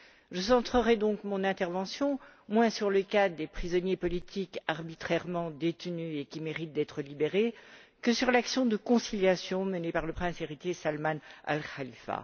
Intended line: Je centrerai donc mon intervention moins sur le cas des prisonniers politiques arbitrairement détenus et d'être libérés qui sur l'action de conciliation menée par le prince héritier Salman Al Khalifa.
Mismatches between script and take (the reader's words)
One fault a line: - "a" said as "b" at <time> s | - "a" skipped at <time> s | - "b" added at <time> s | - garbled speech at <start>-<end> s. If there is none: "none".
- "qui méritent" added at 6.2 s
- "qui" said as "que" at 8.0 s